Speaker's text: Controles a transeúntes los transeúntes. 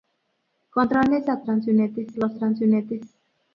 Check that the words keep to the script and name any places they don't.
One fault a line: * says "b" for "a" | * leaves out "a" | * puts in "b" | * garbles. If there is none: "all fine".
all fine